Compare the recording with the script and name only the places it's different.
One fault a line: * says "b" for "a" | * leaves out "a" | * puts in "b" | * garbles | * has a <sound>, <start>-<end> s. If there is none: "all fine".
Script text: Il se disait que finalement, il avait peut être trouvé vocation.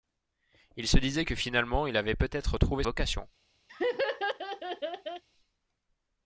* has a laugh, 3.7-5.2 s